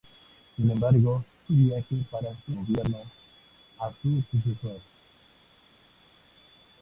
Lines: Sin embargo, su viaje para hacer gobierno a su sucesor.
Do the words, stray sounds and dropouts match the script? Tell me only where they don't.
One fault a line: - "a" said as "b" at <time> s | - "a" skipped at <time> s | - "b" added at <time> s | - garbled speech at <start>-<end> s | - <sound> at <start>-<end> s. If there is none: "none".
none